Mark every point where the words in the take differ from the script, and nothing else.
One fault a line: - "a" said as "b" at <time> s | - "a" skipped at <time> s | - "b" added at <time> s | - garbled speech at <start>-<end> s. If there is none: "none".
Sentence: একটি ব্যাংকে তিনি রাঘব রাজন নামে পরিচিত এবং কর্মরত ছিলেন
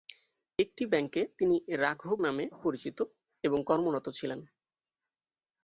- "রাজন" skipped at 2.2 s